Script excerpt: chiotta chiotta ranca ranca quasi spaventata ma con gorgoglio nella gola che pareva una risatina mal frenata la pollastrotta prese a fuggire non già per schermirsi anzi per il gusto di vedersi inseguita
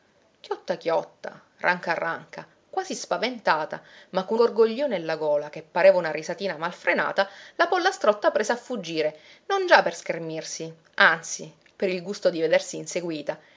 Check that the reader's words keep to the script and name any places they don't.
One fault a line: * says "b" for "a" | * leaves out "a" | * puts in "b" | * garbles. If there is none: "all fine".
all fine